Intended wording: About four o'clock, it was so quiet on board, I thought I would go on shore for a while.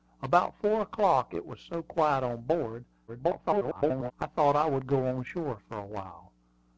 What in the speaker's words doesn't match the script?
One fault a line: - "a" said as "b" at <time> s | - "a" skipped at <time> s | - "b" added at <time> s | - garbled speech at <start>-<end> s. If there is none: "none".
- garbled speech at 3.1-4.1 s